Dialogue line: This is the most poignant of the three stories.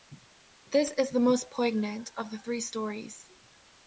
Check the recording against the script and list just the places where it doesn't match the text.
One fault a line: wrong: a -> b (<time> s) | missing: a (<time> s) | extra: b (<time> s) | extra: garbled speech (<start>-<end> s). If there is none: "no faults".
no faults